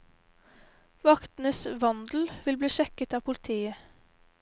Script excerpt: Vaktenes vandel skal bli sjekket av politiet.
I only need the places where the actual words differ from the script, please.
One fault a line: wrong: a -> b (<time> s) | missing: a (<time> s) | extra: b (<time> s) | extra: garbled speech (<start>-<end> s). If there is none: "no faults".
wrong: skal -> vil (2.4 s)